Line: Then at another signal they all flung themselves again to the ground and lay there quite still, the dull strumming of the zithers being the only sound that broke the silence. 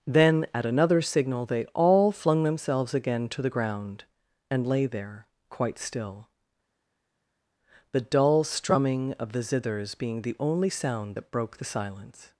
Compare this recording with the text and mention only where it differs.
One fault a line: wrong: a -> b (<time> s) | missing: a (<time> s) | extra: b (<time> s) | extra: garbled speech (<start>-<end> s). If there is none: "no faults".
no faults